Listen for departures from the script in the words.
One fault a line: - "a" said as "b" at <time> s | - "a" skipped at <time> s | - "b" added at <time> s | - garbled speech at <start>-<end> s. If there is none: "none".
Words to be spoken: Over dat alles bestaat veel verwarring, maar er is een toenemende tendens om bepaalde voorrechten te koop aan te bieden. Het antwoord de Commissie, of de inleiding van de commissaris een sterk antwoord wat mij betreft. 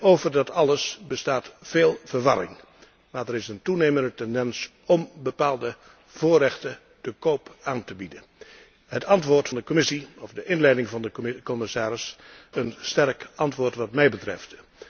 none